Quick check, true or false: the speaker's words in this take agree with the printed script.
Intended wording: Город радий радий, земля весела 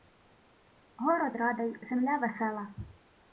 false